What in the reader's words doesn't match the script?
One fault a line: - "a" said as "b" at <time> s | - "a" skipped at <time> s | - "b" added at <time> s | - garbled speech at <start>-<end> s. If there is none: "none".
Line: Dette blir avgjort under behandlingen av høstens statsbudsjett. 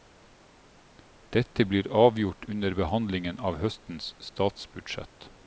none